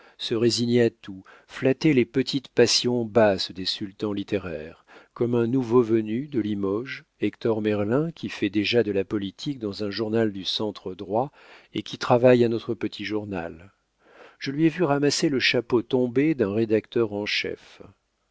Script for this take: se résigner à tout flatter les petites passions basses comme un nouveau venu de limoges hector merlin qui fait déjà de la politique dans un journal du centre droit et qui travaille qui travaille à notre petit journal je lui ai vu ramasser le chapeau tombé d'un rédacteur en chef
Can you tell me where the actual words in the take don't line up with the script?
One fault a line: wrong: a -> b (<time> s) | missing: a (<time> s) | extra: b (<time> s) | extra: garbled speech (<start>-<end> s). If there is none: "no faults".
extra: des sultans littéraires (3.5 s)
missing: qui travaille (12.4 s)